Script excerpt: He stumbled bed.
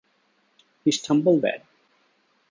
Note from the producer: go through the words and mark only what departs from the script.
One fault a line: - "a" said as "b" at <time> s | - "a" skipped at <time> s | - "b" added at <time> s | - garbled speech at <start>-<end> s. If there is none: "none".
none